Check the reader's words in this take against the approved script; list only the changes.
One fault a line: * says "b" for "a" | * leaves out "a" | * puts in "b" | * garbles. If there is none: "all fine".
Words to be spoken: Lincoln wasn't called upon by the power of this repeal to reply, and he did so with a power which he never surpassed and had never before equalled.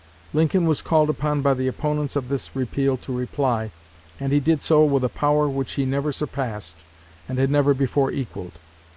* says "was" for "wasn't"
* says "opponents" for "power"